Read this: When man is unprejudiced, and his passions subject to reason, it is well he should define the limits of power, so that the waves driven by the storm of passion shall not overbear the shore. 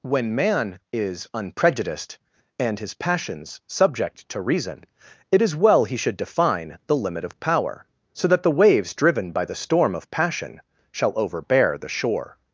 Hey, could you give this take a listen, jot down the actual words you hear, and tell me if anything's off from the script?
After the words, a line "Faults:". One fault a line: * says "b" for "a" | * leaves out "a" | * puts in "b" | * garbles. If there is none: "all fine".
When man is unprejudiced, and his passions subject to reason, it is well he should define the limit of power, so that the waves driven by the storm of passion shall overbear the shore.
Faults:
* says "limit" for "limits"
* leaves out "not"